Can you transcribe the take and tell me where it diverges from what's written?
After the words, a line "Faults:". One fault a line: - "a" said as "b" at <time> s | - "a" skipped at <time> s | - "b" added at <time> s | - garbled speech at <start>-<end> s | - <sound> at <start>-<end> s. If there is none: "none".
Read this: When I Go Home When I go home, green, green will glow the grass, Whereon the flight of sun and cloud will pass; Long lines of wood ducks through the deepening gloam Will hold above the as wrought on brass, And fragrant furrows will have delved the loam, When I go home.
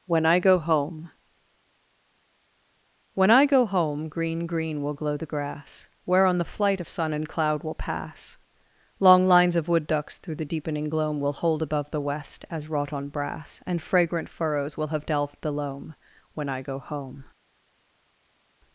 When I Go Home When I go home, green, green will glow the grass, Whereon the flight of sun and cloud will pass; Long lines of wood ducks through the deepening gloam Will hold above the west, as wrought on brass, And fragrant furrows will have delved the loam, When I go home.
Faults:
- "west" added at 12.0 s